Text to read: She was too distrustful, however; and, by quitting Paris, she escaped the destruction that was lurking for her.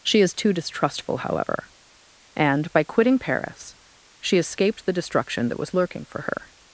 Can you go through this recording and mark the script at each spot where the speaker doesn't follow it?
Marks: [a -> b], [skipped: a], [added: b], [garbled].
She [was -> is] too distrustful, however; and, by quitting Paris, she escaped the destruction that was lurking for her.